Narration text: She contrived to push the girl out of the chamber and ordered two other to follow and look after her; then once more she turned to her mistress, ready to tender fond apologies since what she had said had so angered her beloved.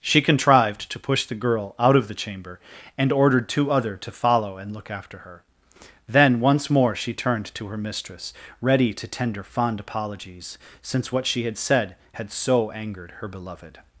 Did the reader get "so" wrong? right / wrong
right